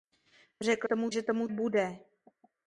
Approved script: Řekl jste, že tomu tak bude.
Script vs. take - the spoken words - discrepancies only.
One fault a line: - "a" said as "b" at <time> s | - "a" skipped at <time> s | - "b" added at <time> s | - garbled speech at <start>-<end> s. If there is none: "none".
- "jste" said as "tomu" at 0.8 s
- "tak" skipped at 1.5 s